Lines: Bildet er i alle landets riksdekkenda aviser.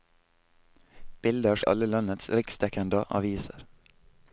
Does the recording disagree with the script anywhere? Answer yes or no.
no